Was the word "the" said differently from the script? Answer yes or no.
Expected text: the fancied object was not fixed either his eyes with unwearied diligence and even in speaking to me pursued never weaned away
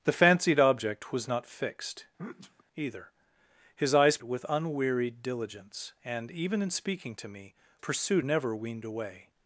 no